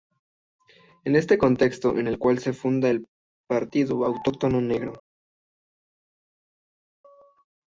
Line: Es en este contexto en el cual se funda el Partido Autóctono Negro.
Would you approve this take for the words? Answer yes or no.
yes